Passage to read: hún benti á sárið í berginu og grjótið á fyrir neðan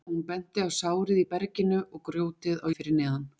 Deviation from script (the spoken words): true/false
false